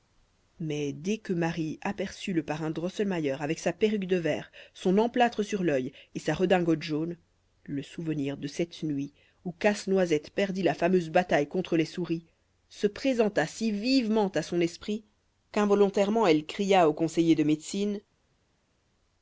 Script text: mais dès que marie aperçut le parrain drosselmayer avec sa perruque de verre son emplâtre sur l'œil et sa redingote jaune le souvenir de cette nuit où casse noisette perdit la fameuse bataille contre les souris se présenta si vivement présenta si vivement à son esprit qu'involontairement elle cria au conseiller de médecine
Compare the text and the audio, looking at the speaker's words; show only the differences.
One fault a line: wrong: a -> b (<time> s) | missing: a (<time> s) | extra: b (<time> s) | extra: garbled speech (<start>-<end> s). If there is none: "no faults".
missing: présenta si vivement (14.3 s)